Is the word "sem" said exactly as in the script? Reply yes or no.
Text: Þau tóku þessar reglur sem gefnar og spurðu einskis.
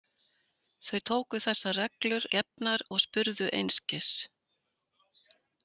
no